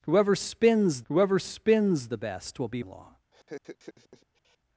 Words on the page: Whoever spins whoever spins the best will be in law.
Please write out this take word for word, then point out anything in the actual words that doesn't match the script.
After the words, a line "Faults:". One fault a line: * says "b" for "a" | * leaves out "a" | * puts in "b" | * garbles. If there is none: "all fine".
Whoever spins whoever spins the best will be in law.
Faults:
all fine